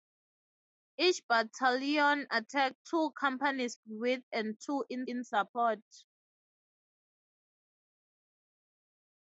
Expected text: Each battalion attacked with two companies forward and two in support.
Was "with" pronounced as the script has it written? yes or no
no